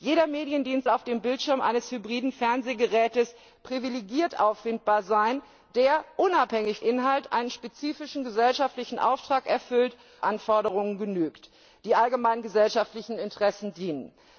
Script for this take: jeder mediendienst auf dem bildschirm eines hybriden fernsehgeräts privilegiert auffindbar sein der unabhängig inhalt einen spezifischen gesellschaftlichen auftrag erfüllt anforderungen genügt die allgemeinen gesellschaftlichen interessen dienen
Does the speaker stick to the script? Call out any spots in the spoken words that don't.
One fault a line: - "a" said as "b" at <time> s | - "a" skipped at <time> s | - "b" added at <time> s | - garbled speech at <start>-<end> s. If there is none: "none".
none